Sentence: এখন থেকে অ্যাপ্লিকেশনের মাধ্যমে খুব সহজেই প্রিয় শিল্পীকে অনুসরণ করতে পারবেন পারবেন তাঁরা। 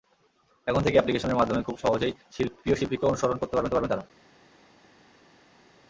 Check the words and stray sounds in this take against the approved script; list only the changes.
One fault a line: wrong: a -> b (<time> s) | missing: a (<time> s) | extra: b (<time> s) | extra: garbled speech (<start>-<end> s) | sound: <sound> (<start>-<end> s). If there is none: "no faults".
no faults